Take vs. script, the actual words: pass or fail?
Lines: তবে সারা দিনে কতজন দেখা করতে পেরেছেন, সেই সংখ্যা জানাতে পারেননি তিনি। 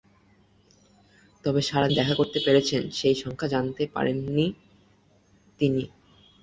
fail